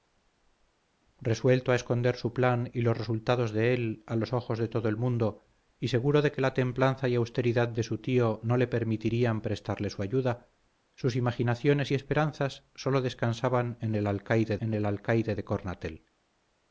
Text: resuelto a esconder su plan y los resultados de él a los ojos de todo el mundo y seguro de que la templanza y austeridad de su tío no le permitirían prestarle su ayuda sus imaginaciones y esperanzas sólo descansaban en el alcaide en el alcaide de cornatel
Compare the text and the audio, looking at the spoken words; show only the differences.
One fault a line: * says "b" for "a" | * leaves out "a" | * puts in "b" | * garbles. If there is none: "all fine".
all fine